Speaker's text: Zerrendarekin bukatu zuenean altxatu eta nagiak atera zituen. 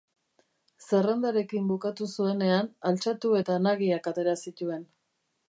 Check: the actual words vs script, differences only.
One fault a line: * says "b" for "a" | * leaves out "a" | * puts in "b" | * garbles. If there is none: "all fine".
all fine